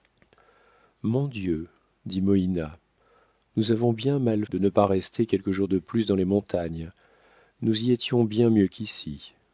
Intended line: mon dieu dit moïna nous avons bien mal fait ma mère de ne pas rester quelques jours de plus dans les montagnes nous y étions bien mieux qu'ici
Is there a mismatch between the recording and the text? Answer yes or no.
yes